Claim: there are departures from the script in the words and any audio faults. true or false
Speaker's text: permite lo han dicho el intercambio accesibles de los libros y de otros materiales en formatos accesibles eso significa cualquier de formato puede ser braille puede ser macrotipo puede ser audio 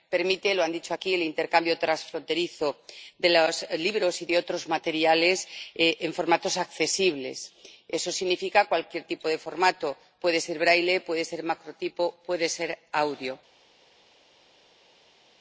true